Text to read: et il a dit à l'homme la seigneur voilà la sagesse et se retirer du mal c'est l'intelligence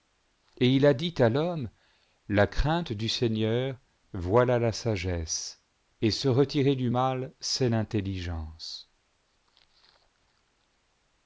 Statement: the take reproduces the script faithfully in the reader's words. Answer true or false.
false